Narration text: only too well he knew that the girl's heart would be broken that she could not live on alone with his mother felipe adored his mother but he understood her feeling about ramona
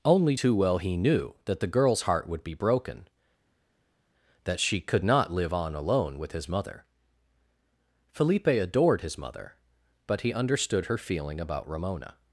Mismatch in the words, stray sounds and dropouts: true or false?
false